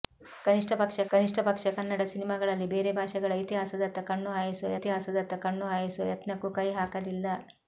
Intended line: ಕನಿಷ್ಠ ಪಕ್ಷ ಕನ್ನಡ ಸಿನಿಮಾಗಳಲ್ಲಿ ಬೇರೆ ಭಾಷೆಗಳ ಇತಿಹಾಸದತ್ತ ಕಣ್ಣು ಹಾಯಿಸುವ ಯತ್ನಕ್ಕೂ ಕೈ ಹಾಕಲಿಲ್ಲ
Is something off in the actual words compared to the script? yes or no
yes